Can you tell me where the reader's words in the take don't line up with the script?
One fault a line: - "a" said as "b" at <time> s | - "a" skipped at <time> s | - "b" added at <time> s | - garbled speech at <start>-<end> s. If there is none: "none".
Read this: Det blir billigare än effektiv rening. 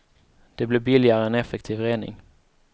none